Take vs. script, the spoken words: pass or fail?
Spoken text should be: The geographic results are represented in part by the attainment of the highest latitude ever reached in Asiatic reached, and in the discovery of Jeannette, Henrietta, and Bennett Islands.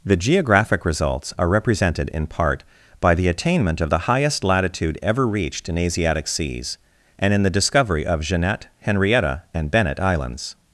fail